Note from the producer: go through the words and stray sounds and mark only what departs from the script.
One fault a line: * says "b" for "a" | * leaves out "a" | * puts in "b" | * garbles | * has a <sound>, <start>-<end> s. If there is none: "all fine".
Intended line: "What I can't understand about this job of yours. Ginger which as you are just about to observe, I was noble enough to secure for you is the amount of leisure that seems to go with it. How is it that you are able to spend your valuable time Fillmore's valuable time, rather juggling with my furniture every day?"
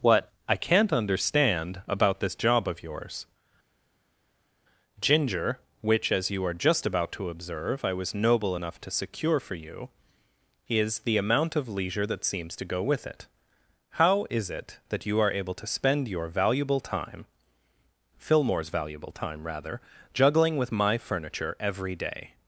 all fine